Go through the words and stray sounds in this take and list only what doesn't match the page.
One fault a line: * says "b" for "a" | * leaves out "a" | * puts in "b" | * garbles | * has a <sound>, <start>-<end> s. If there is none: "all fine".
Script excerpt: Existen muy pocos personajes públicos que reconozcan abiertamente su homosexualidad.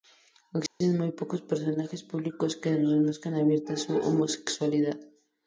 * has a dropout, 0.7-0.8 s